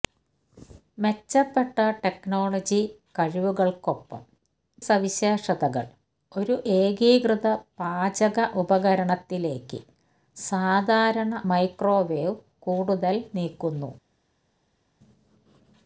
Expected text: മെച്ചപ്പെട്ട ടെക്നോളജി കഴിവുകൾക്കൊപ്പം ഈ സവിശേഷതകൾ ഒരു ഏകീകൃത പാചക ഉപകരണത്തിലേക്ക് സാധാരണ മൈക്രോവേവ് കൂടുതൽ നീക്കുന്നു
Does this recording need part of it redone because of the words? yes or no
yes